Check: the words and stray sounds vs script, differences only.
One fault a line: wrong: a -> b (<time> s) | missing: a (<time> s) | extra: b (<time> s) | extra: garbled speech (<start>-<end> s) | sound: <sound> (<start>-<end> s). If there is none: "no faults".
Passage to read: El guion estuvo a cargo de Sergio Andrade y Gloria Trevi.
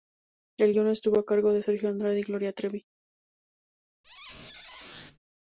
sound: squeak (4.0-5.2 s)